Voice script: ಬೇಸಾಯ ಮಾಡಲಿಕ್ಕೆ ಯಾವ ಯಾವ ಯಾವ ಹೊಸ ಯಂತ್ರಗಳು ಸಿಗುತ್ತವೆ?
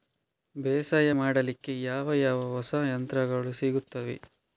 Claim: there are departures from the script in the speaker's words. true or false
true